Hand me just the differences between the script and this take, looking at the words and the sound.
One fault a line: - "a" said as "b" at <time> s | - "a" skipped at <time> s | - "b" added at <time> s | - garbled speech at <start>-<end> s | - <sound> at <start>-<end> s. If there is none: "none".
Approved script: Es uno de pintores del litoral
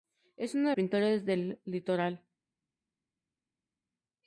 none